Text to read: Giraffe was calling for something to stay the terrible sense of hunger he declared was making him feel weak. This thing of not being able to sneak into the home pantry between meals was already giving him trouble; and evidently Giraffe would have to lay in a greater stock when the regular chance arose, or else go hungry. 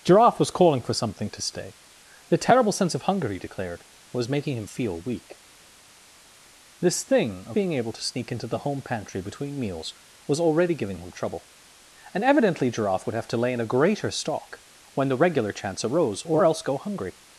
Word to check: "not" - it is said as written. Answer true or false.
false